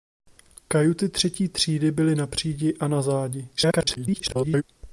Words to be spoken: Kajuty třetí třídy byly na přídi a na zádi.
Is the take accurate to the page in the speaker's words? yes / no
no